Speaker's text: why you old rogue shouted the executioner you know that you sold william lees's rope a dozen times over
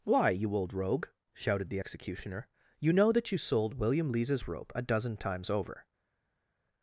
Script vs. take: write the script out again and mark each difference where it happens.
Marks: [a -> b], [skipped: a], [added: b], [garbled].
why you old rogue shouted the executioner you know that you sold william lees's rope a dozen times over